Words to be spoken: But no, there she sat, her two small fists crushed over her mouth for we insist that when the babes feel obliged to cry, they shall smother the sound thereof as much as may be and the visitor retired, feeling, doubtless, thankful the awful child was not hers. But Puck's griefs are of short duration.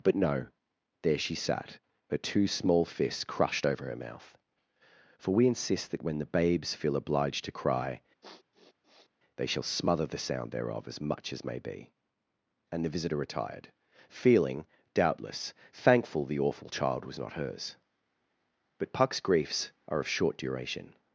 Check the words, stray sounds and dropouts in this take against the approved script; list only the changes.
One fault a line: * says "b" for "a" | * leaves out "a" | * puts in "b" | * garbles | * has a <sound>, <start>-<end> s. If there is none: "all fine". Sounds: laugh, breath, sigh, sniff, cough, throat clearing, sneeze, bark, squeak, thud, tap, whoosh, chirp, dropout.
* has a sniff, 8.2-9.1 s